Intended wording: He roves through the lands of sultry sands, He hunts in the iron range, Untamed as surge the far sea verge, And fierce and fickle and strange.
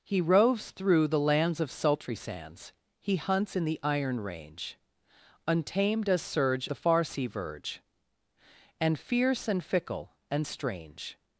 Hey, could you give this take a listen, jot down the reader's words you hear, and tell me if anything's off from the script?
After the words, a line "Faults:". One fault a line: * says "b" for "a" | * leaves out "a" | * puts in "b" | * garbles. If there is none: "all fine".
He roves through the lands of sultry sands, He hunts in the iron range, Untamed as surge the far sea verge, And fierce and fickle and strange.
Faults:
all fine